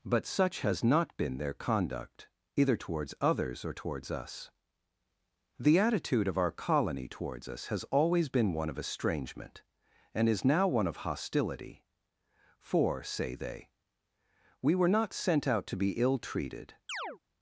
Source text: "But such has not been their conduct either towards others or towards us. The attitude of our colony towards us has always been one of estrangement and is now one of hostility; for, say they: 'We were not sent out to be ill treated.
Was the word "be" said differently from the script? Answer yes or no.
no